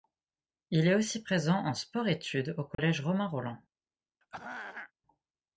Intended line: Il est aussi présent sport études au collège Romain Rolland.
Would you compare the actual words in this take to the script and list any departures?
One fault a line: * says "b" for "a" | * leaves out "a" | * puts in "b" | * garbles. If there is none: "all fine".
* puts in "en"